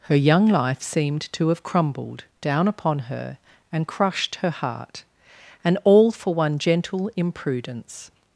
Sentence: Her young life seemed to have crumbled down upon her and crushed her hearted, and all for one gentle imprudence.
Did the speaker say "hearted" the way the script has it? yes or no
no